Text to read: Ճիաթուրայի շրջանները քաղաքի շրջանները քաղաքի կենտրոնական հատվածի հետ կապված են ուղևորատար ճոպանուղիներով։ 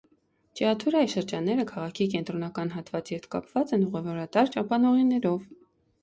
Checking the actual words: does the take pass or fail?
fail